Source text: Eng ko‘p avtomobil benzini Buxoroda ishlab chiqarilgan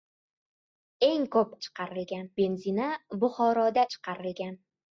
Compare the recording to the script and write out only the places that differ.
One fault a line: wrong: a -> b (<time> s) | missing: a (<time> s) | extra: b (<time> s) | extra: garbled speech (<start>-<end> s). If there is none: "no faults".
wrong: avtomobil -> chiqarilgan (1.7 s)
missing: ishlab (3.8 s)